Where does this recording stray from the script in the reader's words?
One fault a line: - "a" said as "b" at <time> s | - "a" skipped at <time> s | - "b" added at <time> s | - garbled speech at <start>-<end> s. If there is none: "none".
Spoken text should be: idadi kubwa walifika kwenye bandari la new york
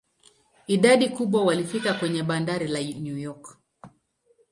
none